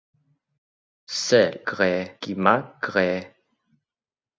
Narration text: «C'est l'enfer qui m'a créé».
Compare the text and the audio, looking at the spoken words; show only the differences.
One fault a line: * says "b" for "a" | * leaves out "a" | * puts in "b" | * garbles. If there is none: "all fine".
* says "créé" for "l'enfer"